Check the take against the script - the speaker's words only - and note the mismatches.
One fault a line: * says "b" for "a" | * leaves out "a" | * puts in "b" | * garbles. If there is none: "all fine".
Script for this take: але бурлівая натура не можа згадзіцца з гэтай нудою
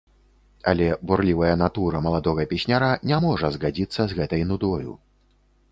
* puts in "маладога песняра"